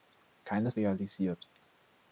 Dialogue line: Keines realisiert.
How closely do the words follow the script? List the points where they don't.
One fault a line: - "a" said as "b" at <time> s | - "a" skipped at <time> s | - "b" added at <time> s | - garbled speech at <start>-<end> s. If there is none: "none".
none